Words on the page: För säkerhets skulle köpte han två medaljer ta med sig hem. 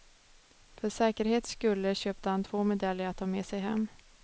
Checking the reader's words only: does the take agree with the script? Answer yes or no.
no